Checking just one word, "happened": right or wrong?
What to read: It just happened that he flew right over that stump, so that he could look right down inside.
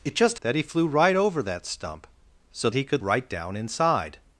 wrong